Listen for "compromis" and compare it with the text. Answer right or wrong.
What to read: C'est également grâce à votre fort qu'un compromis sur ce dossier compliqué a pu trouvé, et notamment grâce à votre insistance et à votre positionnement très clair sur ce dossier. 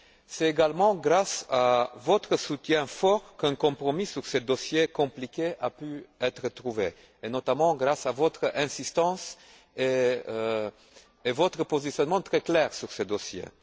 right